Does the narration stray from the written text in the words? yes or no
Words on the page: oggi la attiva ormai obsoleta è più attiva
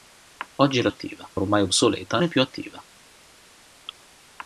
no